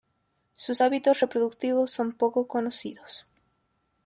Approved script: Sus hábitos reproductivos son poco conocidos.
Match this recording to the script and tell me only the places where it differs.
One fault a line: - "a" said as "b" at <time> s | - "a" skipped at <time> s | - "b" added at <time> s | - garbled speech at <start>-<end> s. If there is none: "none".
none